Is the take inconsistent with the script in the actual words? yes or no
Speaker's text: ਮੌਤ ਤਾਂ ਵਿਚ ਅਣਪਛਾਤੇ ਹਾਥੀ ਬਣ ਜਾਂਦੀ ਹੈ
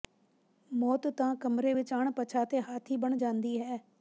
yes